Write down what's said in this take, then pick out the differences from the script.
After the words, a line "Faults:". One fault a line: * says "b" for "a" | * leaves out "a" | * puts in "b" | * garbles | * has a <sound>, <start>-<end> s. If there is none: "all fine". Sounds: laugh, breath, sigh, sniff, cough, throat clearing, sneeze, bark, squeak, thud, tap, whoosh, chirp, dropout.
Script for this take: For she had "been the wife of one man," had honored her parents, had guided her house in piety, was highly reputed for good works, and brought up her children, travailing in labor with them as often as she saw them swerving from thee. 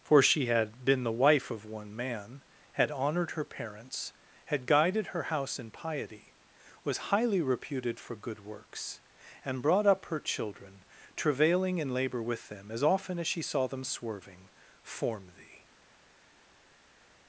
For she had "been the wife of one man," had honored her parents, had guided her house in piety, was highly reputed for good works, and brought up her children, travailing in labor with them as often as she saw them swerving form thee.
Faults:
* says "form" for "from"